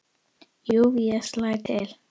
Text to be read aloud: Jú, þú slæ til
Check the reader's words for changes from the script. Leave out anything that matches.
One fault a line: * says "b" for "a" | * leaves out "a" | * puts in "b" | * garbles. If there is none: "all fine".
* says "ég" for "þú"